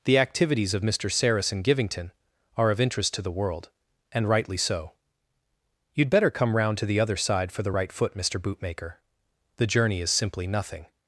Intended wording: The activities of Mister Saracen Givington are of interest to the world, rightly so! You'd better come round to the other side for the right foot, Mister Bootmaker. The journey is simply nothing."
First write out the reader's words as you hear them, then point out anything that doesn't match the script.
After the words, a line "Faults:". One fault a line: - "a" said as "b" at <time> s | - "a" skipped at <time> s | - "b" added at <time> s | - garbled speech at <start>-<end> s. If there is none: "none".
The activities of Mister Saracen Givington are of interest to the world, and rightly so! You'd better come round to the other side for the right foot, Mister Bootmaker. The journey is simply nothing."
Faults:
- "and" added at 4.1 s